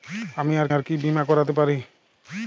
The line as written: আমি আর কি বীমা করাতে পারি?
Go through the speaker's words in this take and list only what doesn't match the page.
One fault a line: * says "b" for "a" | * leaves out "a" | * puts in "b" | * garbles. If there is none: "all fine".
* puts in "আর"